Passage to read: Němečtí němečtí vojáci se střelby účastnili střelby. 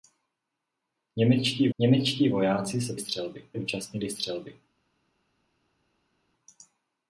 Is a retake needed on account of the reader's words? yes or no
no